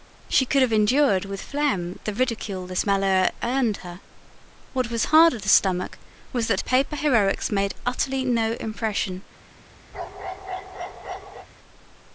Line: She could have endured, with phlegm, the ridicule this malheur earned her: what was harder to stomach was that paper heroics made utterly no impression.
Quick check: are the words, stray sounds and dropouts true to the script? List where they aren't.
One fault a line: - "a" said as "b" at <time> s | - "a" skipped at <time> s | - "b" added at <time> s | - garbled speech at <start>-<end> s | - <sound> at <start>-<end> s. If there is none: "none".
- bark at 9.9-11.5 s